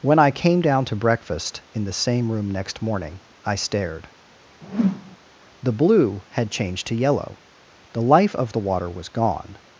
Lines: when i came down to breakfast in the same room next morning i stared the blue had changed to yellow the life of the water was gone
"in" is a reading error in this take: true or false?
false